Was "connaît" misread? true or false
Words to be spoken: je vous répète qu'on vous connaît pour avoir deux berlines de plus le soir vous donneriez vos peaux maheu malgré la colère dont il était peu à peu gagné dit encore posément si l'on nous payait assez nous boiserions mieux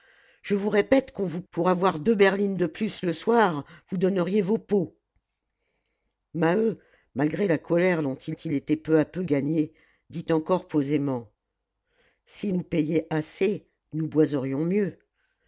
true